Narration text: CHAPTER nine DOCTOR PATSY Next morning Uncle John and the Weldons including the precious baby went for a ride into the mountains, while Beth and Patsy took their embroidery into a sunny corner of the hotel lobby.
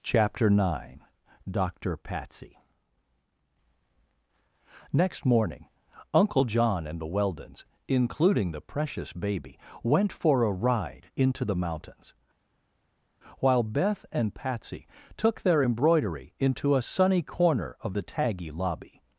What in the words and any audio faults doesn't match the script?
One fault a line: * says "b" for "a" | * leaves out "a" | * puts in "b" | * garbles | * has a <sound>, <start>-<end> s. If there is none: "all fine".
* says "taggy" for "hotel"